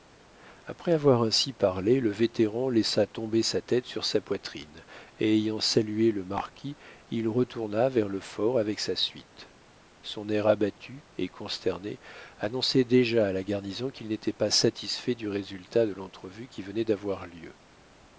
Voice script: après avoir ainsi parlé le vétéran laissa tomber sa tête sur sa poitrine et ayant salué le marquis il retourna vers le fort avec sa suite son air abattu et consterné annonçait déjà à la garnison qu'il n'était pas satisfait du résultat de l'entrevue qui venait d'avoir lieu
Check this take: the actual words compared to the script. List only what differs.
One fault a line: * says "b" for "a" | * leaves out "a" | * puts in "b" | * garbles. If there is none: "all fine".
all fine